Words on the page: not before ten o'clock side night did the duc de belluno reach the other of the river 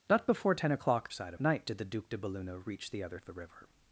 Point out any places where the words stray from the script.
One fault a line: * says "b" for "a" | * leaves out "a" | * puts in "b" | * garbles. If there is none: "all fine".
all fine